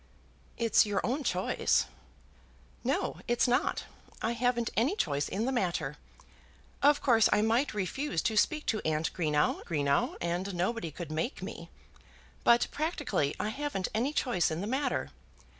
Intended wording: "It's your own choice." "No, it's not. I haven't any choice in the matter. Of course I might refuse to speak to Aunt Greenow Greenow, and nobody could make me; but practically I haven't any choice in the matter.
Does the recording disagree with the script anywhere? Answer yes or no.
no